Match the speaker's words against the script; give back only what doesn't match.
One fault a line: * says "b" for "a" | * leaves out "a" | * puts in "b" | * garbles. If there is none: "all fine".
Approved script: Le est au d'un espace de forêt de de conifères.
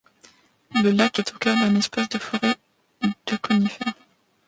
* puts in "lac"
* puts in "cœur"
* leaves out "de"